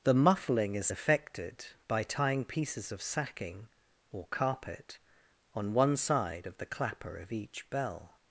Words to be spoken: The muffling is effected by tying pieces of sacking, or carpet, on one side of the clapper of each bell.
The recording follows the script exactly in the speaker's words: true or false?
true